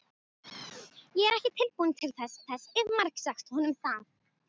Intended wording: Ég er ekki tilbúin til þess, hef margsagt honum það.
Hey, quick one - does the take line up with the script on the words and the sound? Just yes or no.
no